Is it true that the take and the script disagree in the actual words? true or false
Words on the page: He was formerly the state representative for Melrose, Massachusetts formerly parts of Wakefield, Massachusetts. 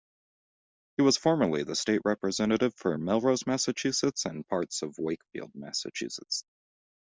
true